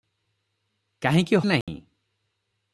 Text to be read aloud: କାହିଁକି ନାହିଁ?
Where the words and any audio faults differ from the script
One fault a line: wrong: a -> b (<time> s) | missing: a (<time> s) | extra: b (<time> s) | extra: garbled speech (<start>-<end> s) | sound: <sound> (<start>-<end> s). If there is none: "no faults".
sound: dropout (1.6-1.7 s)